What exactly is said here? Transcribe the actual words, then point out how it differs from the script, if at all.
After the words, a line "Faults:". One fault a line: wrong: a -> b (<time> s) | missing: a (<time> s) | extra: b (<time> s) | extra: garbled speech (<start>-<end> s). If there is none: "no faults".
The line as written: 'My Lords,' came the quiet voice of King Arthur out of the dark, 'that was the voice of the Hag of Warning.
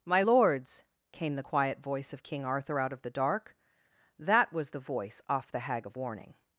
'My Lords,' came the quiet voice of King Arthur out of the dark, 'that was the voice off the Hag of Warning.
Faults:
wrong: of -> off (5.3 s)